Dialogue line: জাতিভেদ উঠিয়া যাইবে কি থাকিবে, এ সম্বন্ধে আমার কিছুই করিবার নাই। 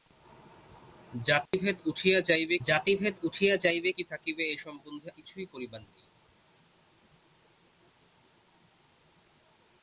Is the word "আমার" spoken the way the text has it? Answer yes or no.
no